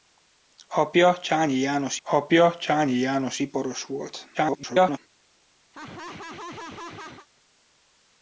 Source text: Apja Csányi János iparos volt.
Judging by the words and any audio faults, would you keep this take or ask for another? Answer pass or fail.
fail